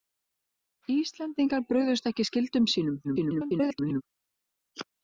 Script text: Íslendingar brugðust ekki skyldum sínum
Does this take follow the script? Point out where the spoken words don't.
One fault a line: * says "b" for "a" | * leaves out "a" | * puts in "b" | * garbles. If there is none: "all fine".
* garbles